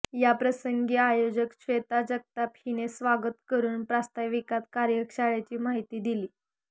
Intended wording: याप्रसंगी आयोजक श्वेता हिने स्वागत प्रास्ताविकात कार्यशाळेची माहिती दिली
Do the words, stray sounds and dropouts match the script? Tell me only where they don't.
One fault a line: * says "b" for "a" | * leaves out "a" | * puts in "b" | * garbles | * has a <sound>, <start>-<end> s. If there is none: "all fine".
* puts in "जगताप"
* puts in "करून"